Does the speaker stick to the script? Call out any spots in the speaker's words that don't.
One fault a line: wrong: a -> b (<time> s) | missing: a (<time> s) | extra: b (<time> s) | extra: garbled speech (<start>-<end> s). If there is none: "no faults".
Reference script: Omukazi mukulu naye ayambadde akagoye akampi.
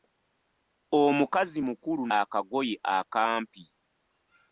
missing: naye ayambadde (2.0 s)